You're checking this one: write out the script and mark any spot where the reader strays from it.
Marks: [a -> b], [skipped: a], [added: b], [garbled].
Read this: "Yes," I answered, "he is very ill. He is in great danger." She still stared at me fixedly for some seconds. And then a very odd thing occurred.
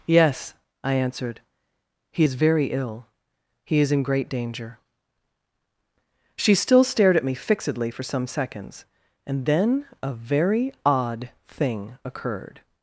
"Yes," I answered, "he is very ill. He is in great danger." She still stared at me fixedly for some seconds. And then a very odd thing occurred.